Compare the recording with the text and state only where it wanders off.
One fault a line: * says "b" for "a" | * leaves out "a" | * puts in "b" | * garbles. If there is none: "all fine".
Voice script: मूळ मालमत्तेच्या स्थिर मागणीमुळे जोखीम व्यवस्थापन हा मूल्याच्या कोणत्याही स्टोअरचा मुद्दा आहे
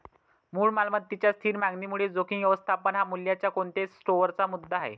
all fine